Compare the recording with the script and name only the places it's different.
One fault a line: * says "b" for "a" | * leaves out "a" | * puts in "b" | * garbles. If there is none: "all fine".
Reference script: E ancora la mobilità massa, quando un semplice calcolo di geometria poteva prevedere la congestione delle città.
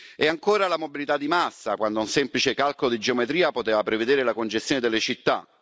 * puts in "di"